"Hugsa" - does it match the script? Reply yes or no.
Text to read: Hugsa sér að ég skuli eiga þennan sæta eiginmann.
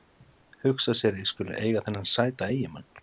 yes